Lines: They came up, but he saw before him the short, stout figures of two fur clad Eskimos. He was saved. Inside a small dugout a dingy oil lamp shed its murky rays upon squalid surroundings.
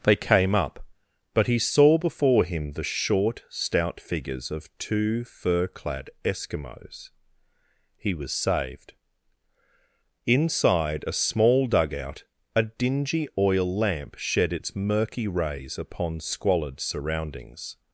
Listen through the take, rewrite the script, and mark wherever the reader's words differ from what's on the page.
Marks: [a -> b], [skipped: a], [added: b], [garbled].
They came up, but he saw before him the short, stout figures of two fur clad Eskimos. He was saved. Inside a small dugout a dingy oil lamp shed its murky rays upon squalid surroundings.